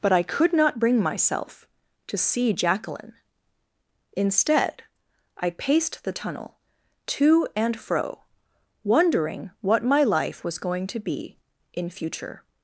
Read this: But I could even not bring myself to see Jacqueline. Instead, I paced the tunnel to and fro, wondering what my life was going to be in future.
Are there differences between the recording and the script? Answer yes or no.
yes